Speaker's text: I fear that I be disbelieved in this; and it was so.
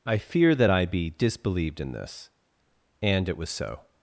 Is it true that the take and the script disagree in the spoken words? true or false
false